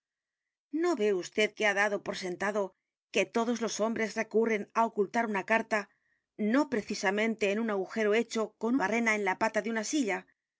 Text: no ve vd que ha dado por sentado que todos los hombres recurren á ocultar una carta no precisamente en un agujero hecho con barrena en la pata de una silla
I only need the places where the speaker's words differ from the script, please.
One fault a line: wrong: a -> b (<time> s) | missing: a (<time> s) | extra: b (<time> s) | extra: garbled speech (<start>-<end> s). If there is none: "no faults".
no faults